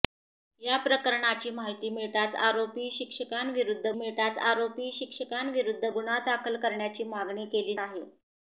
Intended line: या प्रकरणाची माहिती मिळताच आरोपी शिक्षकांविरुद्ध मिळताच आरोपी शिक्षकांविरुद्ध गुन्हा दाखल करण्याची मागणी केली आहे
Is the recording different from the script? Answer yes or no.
no